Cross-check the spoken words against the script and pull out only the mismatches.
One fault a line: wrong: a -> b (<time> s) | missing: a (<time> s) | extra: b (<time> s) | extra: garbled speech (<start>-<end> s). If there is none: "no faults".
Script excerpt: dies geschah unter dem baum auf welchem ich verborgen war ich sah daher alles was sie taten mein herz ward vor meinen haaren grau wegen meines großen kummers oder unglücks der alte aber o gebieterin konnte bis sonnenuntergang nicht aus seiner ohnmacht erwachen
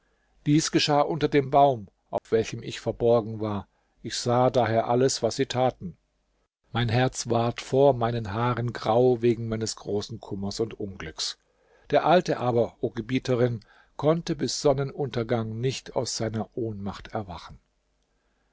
wrong: oder -> und (10.6 s)